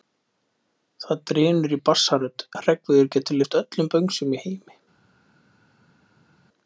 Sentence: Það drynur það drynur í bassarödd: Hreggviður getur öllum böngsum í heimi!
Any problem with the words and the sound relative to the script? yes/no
yes